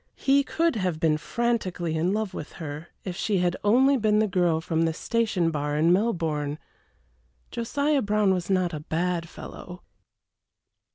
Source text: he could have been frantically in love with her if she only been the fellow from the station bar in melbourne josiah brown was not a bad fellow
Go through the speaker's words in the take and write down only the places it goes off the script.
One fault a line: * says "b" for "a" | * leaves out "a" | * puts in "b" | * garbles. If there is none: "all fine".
* puts in "had"
* says "girl" for "fellow"